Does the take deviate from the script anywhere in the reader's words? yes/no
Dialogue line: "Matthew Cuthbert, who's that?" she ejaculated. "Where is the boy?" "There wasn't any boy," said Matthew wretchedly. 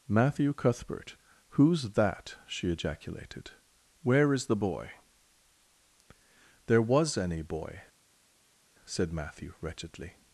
yes